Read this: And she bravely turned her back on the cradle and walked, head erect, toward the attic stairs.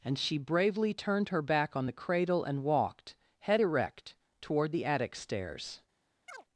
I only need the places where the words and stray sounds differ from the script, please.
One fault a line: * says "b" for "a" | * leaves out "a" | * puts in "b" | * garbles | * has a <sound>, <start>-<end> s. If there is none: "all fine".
* has a chirp, 6.3-6.4 s